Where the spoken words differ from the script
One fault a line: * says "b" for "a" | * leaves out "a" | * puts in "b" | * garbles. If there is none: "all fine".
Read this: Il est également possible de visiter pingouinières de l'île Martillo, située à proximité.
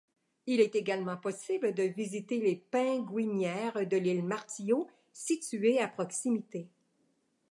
* puts in "les"